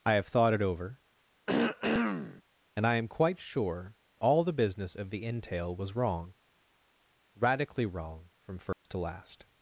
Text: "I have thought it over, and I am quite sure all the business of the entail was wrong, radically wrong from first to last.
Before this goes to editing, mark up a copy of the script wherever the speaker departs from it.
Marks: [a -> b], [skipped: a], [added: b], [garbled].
"I have thought it over, and I am quite sure all the business of the entail was wrong, radically wrong from first to last.